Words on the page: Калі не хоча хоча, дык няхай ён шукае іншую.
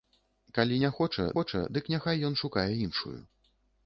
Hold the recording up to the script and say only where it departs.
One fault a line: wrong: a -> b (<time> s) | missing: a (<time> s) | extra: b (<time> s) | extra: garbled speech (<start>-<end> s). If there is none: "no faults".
no faults